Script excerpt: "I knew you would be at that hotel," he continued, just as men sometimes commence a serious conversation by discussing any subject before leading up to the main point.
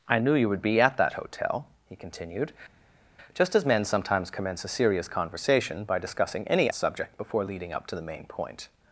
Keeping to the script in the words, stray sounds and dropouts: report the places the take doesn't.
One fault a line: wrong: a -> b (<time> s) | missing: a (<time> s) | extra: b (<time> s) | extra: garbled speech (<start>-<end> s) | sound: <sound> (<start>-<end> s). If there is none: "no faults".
no faults